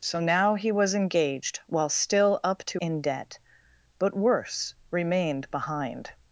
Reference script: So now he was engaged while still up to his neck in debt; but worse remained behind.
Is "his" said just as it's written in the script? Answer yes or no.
no